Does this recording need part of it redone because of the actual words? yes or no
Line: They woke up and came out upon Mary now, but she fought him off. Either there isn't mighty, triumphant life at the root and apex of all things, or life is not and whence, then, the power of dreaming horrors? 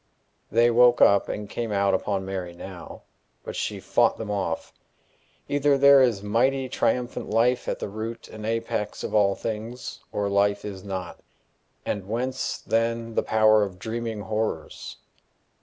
yes